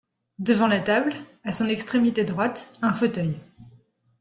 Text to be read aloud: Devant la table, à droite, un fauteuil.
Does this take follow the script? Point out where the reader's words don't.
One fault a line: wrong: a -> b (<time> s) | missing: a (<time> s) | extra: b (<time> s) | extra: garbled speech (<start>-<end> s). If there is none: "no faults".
extra: son extrémité (1.5 s)